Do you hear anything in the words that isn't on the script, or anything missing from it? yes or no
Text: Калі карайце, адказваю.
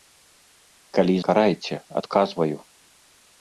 no